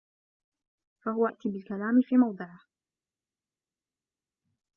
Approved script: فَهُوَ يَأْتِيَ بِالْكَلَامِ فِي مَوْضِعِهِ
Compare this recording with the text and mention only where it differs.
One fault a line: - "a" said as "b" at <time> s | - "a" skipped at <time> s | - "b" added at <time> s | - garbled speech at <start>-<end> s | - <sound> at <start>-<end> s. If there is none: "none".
none